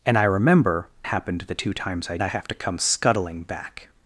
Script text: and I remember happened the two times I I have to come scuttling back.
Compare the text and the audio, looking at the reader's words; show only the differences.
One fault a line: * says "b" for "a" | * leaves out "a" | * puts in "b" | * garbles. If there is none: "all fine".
all fine